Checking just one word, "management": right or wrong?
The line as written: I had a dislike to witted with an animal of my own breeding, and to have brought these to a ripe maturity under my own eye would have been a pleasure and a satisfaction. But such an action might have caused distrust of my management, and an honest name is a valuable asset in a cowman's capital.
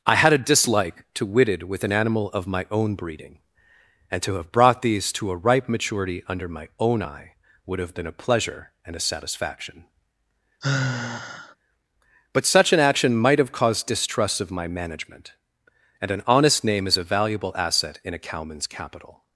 right